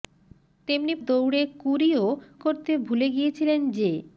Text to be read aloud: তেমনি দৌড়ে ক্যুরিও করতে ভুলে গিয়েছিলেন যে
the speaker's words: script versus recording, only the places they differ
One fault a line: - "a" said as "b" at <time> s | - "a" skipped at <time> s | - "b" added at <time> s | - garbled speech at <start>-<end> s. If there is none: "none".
none